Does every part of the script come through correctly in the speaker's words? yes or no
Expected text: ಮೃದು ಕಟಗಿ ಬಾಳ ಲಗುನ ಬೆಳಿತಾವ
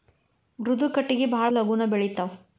yes